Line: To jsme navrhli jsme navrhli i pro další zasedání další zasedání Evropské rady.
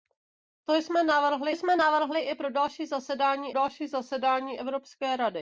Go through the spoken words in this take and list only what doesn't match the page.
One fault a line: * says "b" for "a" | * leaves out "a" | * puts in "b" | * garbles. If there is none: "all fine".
all fine